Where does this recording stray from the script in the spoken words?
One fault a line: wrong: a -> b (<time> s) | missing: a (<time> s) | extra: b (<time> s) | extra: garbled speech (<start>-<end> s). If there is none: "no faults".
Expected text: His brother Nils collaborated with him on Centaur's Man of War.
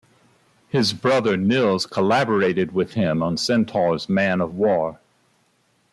no faults